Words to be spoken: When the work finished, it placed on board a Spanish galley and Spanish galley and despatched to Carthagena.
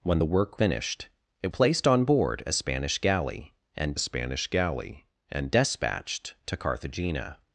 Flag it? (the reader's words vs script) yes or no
no